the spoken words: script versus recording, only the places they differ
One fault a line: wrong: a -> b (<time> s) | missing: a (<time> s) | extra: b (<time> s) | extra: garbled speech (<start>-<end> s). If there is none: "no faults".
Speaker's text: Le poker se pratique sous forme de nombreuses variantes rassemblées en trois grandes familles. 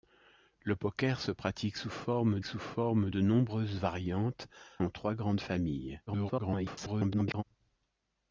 extra: sous forme (2.4 s)
missing: rassemblées (4.5 s)
extra: garbled speech (6.1-7.4 s)